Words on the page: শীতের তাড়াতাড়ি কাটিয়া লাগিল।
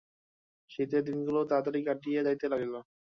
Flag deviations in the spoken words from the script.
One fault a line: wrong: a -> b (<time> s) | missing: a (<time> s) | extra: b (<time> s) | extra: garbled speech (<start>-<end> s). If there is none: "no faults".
extra: দিনগুলি (1.1 s)
extra: যাইতে (2.3 s)